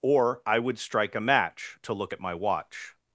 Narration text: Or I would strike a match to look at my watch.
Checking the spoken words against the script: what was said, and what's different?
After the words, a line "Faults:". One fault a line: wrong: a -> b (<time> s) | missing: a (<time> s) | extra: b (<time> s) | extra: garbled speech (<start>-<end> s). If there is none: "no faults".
Or I would strike a match to look at my watch.
Faults:
no faults